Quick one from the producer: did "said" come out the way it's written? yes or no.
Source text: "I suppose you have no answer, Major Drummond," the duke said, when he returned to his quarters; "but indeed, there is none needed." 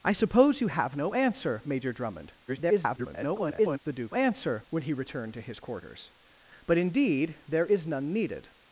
no